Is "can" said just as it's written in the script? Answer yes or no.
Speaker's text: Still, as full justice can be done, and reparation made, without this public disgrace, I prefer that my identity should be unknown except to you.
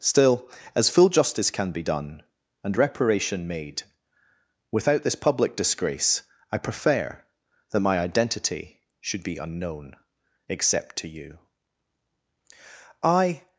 yes